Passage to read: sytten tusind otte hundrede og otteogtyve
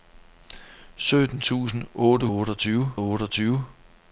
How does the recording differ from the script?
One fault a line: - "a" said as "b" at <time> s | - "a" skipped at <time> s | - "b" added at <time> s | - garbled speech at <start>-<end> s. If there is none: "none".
- "hundrede" said as "otteogtyve" at 2.3 s